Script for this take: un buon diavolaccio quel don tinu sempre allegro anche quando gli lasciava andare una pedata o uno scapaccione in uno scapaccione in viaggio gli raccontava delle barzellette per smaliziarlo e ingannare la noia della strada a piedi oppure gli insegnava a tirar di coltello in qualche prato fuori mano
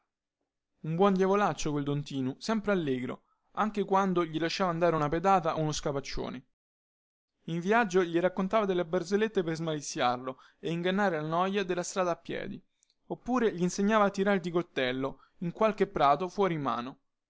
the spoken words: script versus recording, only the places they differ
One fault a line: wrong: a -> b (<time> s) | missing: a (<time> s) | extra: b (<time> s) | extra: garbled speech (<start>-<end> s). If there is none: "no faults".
missing: uno scapaccione in (7.6 s)